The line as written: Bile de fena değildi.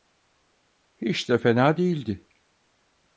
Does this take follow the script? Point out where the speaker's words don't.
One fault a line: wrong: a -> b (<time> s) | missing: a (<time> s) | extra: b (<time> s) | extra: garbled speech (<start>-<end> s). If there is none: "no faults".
wrong: Bile -> Hiç (1.0 s)